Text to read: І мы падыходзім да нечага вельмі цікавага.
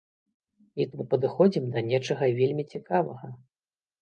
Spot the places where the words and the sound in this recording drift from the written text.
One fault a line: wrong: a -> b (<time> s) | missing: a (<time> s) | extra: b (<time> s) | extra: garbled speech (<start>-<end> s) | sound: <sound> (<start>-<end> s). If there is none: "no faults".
no faults